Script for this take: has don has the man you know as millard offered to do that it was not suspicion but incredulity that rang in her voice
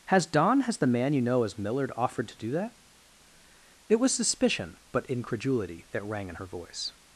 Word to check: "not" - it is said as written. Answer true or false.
false